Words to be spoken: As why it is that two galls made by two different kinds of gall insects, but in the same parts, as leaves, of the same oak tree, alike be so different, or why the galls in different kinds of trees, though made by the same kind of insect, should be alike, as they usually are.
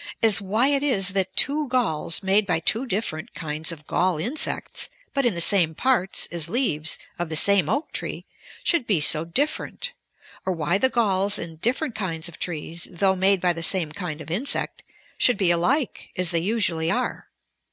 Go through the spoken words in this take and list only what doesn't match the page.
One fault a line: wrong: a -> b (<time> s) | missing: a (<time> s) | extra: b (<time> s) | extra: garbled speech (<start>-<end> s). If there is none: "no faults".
wrong: alike -> should (8.6 s)